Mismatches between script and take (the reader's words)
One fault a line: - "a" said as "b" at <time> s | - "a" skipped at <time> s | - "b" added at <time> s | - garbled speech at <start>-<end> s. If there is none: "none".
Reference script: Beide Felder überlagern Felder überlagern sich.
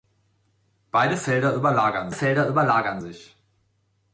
none